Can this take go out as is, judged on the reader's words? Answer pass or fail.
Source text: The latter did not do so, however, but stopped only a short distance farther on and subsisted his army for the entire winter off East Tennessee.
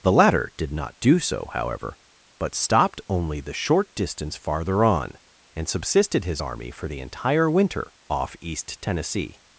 fail